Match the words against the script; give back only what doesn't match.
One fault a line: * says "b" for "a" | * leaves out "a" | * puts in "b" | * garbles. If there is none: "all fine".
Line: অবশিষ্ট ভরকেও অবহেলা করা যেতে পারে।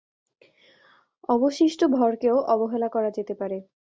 all fine